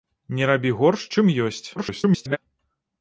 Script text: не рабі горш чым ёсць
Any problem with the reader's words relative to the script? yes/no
yes